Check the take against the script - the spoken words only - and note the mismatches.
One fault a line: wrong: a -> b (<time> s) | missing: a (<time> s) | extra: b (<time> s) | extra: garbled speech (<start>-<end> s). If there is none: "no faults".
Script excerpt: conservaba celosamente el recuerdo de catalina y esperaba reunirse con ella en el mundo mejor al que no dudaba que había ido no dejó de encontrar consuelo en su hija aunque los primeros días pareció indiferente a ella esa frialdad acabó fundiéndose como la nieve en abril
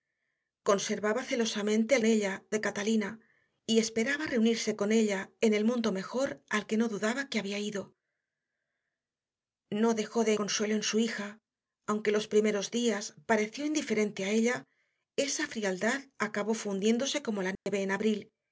wrong: recuerdo -> ella (2.0 s)
missing: encontrar (10.3 s)